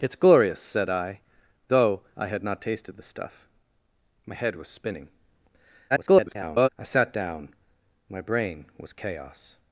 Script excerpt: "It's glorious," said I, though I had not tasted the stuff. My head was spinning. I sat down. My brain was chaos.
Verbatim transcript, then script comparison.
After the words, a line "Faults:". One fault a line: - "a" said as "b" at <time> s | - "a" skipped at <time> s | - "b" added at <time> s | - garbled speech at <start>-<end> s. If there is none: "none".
"It's glorious," said I, though I had not tasted the stuff. My head was spinning. [garbled] I sat down. My brain was chaos.
Faults:
- garbled speech at 5.9-6.7 s